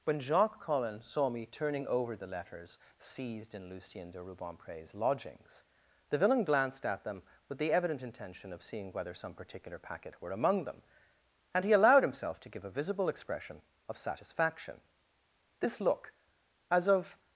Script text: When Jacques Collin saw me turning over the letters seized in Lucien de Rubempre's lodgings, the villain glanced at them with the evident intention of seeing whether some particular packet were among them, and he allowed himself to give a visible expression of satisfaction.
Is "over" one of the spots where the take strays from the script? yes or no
no